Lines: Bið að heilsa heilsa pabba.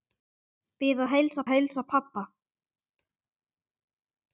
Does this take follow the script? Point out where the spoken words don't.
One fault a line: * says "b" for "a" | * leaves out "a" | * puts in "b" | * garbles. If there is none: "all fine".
all fine